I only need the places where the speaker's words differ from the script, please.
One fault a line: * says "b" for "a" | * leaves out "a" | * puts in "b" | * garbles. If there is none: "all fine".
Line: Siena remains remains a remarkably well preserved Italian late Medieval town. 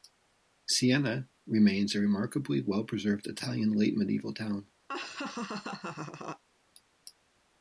* leaves out "remains"